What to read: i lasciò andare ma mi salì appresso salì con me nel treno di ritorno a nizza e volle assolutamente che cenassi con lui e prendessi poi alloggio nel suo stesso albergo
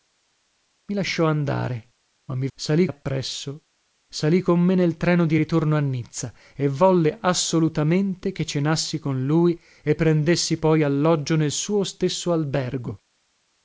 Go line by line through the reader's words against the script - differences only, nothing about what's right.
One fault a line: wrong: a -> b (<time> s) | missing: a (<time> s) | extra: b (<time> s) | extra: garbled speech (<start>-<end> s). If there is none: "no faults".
no faults